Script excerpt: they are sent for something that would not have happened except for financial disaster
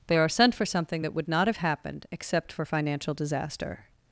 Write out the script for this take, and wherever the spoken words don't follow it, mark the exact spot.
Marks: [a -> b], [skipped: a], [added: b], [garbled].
they are sent for something that would not have happened except for financial disaster